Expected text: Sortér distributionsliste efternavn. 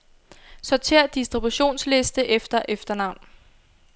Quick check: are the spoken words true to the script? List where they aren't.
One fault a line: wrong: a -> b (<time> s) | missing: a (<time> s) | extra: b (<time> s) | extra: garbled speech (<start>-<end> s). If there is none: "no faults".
extra: efter (2.2 s)